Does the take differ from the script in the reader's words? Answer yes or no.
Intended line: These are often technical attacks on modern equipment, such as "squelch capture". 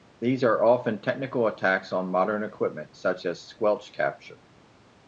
no